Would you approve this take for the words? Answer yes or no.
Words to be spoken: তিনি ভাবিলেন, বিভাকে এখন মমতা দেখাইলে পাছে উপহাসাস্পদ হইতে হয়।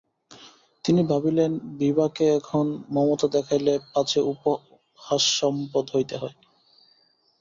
yes